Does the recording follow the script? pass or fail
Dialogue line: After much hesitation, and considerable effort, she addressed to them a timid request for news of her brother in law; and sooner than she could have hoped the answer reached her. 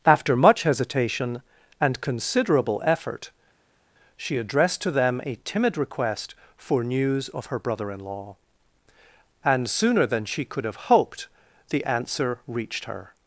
pass